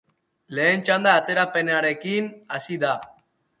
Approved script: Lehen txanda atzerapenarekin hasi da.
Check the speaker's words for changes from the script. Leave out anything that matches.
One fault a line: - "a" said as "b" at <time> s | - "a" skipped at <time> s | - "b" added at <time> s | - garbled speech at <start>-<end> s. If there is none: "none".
none